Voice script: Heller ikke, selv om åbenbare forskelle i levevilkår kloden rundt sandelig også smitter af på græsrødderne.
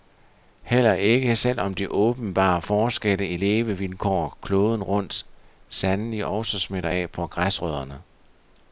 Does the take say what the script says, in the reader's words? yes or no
no